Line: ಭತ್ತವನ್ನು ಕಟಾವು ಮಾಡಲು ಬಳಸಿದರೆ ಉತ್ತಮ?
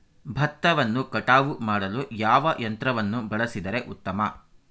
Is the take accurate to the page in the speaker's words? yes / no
no